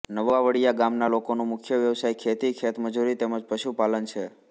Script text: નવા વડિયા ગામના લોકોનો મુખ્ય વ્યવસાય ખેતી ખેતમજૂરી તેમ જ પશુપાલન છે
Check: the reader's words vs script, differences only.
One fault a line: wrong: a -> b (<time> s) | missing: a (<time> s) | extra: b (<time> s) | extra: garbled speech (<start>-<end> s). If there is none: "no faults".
no faults